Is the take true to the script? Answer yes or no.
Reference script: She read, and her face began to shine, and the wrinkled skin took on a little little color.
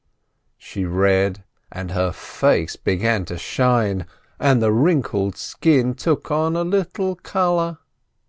no